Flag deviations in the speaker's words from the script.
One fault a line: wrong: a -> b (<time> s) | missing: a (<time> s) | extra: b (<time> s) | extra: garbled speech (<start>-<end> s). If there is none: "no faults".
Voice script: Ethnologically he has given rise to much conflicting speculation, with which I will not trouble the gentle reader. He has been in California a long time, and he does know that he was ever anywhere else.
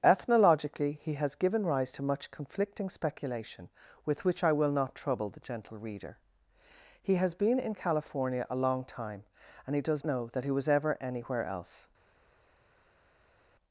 no faults